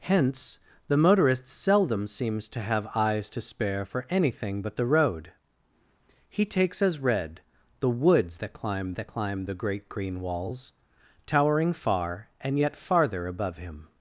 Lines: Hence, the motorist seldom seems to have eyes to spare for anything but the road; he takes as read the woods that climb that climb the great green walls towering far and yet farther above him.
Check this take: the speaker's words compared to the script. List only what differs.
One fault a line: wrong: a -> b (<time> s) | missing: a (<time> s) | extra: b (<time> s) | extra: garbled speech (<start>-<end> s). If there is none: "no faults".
no faults